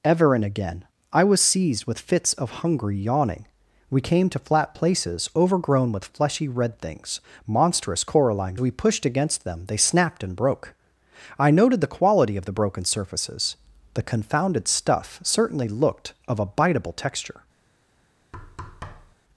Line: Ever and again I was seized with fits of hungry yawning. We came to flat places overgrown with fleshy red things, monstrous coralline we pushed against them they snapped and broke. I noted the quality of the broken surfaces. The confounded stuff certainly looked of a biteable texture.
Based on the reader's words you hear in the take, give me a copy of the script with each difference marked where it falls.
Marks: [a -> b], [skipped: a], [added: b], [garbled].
Ever and again I was seized with fits of hungry yawning. We came to flat places overgrown with fleshy red things, monstrous coralline we pushed against them they snapped and broke. I noted the quality of the broken surfaces. The confounded stuff certainly looked of a biteable texture.